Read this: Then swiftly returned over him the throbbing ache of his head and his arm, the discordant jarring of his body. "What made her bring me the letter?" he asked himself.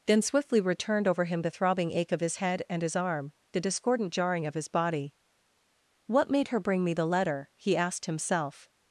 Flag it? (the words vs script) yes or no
no